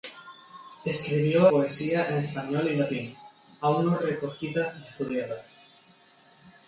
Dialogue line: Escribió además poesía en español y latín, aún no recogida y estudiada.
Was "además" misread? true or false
true